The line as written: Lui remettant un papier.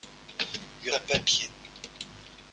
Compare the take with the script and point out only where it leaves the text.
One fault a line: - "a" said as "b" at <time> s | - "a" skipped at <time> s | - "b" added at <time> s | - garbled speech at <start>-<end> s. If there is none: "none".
- "remettant" skipped at 0.9 s